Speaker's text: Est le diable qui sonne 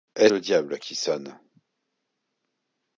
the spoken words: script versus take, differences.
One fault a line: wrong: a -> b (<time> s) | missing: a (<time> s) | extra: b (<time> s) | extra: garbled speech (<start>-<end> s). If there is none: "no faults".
no faults